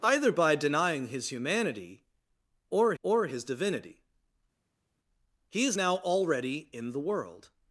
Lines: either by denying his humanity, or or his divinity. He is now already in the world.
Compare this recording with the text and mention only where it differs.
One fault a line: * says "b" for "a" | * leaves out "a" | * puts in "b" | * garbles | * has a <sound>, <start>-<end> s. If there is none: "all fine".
all fine